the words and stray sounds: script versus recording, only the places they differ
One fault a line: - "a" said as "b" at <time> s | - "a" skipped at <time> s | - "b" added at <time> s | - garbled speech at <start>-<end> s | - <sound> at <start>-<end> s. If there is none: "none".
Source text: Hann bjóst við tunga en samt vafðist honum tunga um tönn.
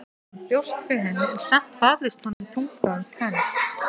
- "tunga" said as "henni" at 1.1 s
- dropout at 2.3-2.4 s